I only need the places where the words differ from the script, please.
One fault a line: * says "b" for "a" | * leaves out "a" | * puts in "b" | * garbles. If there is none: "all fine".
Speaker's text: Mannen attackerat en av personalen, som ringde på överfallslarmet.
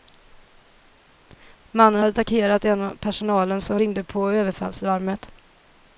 all fine